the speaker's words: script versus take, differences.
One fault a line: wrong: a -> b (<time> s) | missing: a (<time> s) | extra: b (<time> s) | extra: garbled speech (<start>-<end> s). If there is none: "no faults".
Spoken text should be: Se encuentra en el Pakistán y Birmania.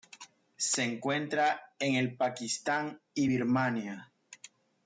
no faults